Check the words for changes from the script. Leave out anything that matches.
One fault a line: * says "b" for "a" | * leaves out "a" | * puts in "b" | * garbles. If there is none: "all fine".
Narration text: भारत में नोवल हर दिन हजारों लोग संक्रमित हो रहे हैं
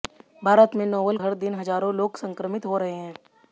all fine